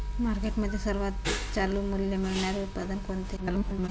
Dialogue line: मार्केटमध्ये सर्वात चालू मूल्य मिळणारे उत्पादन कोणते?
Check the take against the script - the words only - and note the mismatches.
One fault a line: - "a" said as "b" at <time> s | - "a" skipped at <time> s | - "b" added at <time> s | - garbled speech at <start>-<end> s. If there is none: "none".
- garbled speech at 3.4-3.9 s